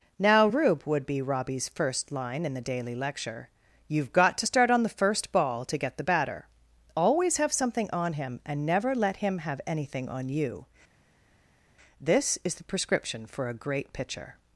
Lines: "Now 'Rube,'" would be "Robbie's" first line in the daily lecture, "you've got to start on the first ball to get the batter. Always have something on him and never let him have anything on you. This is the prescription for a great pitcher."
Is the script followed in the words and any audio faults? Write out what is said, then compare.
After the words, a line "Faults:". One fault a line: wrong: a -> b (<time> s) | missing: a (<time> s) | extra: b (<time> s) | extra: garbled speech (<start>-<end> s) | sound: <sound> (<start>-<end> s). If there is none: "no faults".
"Now 'Rube,'" would be "Robbie's" first line in the daily lecture, "you've got to start on the first ball to get the batter. Always have something on him and never let him have anything on you. This is the prescription for a great pitcher."
Faults:
no faults